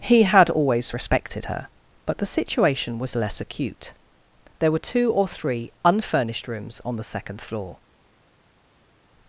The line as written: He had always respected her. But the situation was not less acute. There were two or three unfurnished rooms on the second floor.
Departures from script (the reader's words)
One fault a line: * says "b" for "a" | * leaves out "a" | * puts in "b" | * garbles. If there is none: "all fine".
* leaves out "not"